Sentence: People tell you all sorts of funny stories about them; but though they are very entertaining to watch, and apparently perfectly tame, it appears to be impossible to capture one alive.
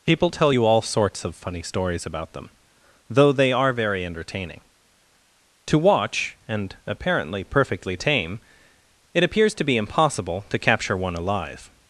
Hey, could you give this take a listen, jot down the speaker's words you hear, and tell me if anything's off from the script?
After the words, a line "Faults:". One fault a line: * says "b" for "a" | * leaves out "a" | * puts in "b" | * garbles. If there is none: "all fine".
People tell you all sorts of funny stories about them; though they are very entertaining to watch, and apparently perfectly tame, it appears to be impossible to capture one alive.
Faults:
* leaves out "but"